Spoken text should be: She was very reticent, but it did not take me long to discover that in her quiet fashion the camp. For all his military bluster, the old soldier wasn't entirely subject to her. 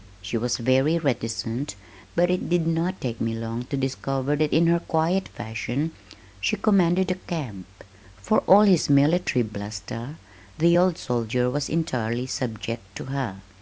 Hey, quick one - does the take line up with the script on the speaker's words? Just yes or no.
no